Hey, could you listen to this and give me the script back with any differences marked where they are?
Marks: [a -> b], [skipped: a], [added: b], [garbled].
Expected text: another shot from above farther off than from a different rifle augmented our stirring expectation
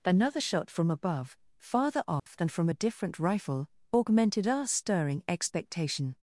another shot from above farther off than from a different rifle augmented our stirring expectation